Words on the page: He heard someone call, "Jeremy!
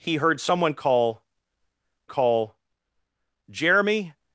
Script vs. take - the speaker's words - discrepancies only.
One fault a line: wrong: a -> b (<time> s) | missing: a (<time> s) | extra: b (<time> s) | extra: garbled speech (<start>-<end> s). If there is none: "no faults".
extra: call (2.0 s)